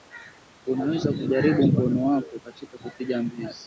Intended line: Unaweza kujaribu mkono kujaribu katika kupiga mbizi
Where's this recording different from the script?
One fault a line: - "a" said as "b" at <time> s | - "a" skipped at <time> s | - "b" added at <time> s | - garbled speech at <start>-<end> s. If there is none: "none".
- "kujaribu" said as "wako" at 2.0 s